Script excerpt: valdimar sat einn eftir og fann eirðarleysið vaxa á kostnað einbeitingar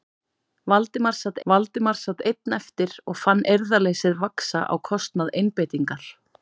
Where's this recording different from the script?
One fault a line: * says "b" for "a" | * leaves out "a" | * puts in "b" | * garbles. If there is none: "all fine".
* puts in "valdimar sat"